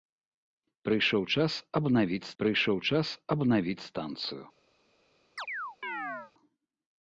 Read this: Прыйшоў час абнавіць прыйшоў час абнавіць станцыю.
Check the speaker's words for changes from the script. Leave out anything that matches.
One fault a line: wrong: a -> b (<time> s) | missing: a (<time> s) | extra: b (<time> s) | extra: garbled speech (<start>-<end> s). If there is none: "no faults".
no faults